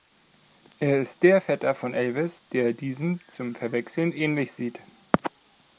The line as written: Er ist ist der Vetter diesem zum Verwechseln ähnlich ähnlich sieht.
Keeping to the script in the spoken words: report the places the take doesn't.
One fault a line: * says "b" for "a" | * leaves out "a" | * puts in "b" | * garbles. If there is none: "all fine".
* leaves out "ist"
* puts in "von Elvis der"
* leaves out "ähnlich"